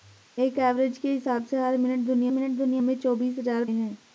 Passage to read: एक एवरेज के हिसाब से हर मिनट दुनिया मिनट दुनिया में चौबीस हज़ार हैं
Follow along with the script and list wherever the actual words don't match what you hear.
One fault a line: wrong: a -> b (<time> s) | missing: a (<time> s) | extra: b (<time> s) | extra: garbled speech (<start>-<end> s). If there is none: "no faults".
no faults